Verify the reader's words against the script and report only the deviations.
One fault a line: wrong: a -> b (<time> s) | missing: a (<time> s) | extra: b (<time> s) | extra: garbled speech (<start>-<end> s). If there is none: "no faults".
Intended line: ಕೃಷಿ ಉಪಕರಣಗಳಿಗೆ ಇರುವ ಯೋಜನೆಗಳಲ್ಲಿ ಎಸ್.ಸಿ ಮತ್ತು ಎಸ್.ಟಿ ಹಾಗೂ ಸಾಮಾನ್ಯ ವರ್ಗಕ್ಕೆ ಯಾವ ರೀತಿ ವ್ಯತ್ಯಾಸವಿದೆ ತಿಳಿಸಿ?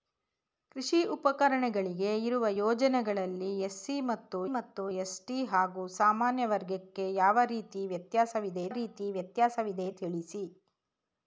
extra: ಮತ್ತು (4.5 s)
extra: ರೀತಿ ವ್ಯತ್ಯಾಸವಿದೆ (8.7 s)